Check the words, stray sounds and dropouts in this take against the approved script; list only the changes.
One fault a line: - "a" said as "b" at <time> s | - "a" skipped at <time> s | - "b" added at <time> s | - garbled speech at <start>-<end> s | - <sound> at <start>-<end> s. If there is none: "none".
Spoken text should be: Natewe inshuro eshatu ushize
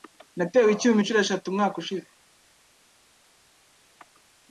- "icyuma" added at 0.7 s
- "umwaka" added at 1.5 s